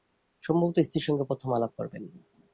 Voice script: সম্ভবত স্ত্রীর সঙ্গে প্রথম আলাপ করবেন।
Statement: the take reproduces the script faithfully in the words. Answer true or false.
true